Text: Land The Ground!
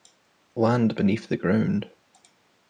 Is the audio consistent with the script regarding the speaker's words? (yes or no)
no